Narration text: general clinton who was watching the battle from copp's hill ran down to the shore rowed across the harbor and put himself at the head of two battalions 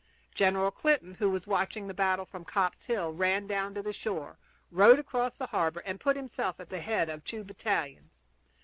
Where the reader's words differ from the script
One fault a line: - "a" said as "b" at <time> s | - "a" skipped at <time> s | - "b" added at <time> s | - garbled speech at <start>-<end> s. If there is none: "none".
none